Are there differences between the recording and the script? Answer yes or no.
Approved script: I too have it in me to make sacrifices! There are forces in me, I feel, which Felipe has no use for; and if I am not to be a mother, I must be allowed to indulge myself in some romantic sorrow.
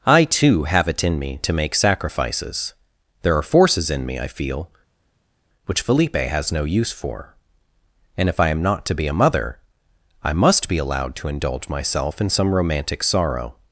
no